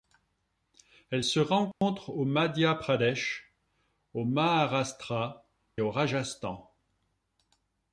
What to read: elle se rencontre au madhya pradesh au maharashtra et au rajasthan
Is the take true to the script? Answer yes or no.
no